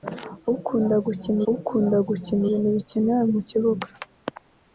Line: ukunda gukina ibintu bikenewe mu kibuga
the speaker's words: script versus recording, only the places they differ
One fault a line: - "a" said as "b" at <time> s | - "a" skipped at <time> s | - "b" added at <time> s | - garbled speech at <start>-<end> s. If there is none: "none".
- "ukunda gukina" added at 1.5 s